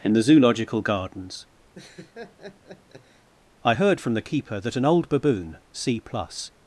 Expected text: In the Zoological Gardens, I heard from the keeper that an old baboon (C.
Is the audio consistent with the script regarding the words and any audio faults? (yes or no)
no